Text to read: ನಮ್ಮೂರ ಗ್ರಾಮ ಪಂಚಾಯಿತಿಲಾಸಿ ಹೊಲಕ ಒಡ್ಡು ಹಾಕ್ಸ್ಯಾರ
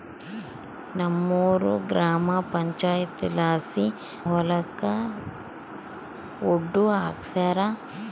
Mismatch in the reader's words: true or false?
false